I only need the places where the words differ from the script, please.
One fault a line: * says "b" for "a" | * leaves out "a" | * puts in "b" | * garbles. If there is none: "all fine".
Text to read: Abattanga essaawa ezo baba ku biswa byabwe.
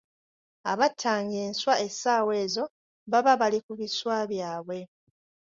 * puts in "enswa"
* puts in "bali"